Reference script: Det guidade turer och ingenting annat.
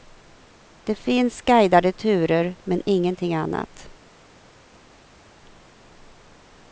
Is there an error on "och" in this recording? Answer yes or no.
yes